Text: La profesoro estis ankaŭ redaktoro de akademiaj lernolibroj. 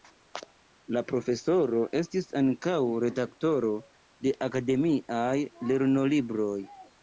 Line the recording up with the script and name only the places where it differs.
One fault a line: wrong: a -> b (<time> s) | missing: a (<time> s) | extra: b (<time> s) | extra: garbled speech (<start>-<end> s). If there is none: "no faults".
no faults